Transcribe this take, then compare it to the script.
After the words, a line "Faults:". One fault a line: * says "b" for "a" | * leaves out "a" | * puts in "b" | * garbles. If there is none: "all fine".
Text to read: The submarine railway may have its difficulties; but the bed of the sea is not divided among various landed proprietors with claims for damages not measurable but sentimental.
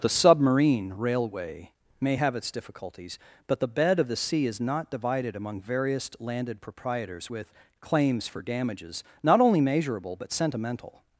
The submarine railway may have its difficulties; but the bed of the sea is not divided among various landed proprietors with claims for damages not only measurable but sentimental.
Faults:
* puts in "only"